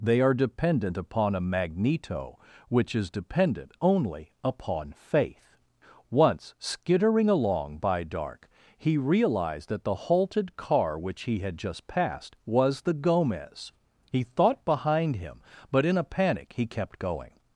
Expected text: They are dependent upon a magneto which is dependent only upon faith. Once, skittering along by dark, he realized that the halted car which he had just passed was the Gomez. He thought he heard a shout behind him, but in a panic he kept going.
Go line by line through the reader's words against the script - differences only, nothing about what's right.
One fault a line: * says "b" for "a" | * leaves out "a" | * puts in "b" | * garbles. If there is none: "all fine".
* leaves out "he heard a shout"